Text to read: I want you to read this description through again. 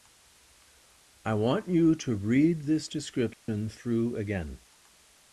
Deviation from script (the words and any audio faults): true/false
true